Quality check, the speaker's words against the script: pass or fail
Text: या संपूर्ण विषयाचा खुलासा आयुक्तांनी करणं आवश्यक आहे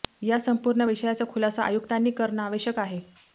pass